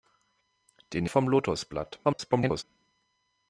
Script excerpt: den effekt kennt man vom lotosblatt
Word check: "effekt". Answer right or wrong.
wrong